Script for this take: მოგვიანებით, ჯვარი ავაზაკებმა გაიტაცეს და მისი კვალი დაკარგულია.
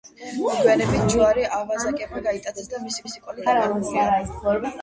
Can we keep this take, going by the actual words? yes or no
no